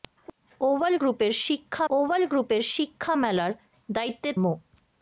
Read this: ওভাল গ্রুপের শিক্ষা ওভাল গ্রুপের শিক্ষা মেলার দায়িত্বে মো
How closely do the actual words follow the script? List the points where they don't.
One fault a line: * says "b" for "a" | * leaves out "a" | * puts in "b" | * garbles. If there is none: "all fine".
all fine